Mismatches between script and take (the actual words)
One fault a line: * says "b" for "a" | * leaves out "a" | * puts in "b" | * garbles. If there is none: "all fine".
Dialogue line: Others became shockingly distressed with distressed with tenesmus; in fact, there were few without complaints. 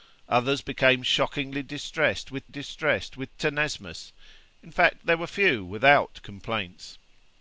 all fine